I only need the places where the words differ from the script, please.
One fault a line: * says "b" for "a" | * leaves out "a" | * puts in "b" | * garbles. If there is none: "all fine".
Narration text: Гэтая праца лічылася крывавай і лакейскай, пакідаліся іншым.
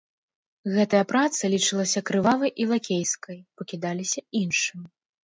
all fine